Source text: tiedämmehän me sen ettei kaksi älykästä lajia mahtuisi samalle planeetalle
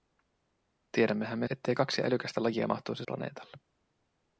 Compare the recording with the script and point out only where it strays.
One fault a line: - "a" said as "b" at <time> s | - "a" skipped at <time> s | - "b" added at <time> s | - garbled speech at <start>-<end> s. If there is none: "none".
- "sen" skipped at 1.5 s
- "samalle" skipped at 3.1 s